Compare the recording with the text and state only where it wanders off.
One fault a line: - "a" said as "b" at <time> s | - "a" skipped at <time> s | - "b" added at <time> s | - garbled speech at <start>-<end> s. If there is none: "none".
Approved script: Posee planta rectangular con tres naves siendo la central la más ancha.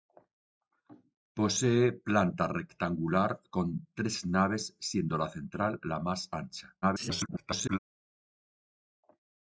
- garbled speech at 6.8-7.8 s